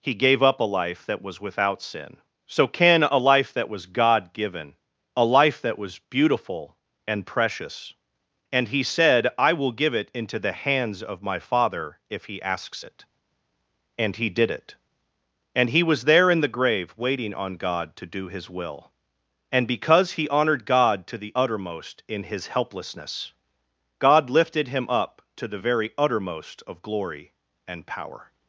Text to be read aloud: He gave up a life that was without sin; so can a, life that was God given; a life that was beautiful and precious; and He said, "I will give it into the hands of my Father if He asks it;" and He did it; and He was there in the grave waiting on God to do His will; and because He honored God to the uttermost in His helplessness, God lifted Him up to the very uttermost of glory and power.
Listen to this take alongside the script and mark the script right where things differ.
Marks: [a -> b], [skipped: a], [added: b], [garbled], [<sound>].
He gave up a life that was without sin; so can a, life that was God given; a life that was beautiful and precious; and He said, "I will give it into the hands of my Father if He asks it;" and He did it; and He was there in the grave waiting on God to do His will; and because He honored God to the uttermost in His helplessness, God lifted Him up to the very uttermost of glory and power.